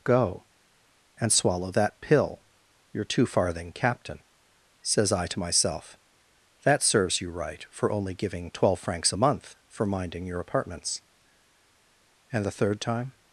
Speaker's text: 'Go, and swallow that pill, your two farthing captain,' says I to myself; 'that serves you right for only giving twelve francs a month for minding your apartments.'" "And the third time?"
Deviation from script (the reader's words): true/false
false